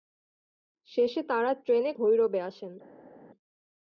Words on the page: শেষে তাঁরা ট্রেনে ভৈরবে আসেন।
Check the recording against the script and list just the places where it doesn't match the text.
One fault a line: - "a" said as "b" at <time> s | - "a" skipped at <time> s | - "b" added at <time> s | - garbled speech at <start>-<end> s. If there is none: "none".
none